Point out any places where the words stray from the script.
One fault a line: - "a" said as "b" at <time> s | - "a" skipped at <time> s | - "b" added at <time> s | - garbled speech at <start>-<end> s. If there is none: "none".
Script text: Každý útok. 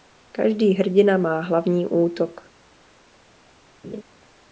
- "hrdina má hlavní" added at 0.7 s